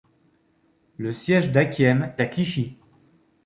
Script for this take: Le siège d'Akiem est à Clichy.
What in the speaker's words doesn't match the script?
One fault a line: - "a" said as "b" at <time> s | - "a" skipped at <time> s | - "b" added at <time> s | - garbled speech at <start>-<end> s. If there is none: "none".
- "est" skipped at 2.1 s